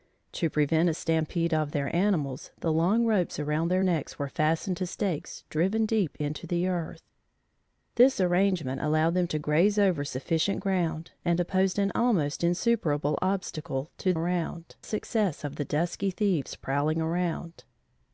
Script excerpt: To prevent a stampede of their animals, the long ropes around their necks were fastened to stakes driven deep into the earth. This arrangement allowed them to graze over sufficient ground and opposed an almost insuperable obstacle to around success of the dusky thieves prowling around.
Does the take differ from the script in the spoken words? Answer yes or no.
no